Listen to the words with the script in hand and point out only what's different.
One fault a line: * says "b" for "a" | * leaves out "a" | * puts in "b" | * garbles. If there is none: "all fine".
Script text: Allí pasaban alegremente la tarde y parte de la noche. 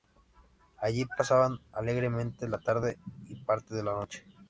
all fine